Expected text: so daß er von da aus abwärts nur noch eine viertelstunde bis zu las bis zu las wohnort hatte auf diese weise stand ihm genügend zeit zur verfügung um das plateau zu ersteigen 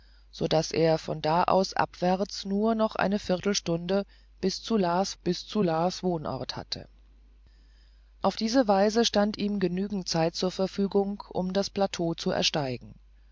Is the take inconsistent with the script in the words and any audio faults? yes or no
no